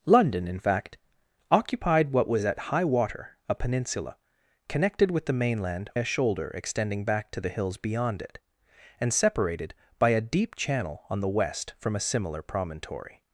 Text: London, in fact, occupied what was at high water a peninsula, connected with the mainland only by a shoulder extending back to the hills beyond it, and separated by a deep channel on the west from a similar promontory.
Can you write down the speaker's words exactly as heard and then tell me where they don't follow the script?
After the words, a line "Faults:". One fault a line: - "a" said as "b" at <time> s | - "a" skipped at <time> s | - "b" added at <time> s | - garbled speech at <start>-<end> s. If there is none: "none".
London, in fact, occupied what was at high water a peninsula, connected with the mainland a shoulder extending back to the hills beyond it, and separated by a deep channel on the west from a similar promontory.
Faults:
- "only by" skipped at 5.9 s